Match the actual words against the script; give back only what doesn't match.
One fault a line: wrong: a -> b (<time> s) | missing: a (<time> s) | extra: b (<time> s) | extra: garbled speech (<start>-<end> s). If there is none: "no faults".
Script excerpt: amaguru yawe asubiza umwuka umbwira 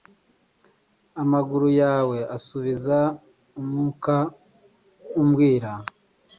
no faults